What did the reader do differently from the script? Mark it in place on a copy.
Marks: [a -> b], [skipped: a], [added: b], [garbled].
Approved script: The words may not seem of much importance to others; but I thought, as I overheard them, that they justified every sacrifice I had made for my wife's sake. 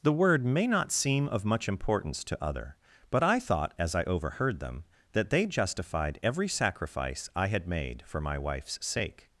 The [words -> word] may not seem of much importance to [others; -> other] but I thought, as I overheard them, that they justified every sacrifice I had made for my wife's sake.